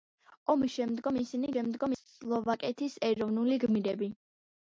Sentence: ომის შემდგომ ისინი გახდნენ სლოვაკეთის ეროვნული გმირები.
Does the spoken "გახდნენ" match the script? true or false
false